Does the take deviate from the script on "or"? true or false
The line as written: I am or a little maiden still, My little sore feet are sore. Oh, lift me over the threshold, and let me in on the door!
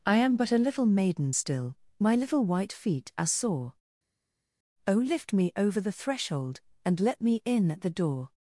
true